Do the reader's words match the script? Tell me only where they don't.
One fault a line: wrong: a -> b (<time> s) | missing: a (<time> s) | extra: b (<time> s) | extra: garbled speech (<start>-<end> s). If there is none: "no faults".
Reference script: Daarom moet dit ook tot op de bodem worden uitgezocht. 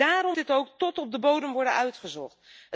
missing: moet (0.4 s)